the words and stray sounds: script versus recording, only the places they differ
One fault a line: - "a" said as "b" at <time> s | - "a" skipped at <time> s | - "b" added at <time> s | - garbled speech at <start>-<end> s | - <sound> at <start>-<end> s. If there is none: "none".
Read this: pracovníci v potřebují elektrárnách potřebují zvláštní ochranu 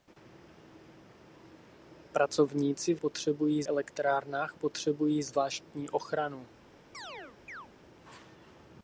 - chirp at 6.9-7.7 s